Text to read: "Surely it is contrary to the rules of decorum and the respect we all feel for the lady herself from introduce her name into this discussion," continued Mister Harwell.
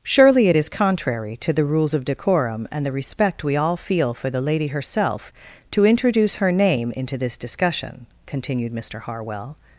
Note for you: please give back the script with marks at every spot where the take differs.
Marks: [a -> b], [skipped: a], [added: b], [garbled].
"Surely it is contrary to the rules of decorum and the respect we all feel for the lady herself [from -> to] introduce her name into this discussion," continued Mister Harwell.